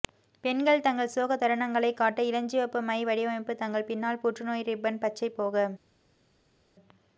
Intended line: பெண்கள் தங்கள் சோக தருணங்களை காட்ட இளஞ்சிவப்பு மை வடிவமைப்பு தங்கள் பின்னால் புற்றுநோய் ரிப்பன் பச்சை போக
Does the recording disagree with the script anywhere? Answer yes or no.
no